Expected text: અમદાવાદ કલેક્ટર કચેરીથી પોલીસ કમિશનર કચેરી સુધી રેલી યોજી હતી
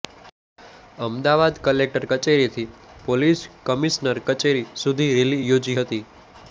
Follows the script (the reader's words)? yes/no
yes